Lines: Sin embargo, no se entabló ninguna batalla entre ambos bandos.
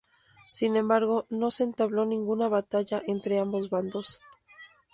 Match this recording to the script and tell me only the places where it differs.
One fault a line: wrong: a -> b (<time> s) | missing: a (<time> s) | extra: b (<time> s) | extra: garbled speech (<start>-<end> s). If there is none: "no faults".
no faults